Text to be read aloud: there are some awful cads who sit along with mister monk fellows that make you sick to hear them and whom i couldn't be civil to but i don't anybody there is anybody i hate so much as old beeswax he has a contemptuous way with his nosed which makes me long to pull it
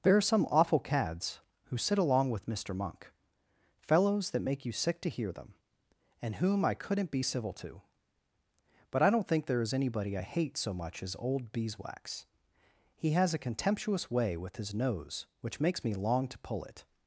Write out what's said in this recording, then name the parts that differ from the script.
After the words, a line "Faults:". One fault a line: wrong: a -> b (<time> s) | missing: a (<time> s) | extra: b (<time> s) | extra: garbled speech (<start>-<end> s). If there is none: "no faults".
there are some awful cads who sit along with mister monk fellows that make you sick to hear them and whom i couldn't be civil to but i don't think there is anybody i hate so much as old beeswax he has a contemptuous way with his nose which makes me long to pull it
Faults:
wrong: anybody -> think (9.3 s)
wrong: nosed -> nose (14.7 s)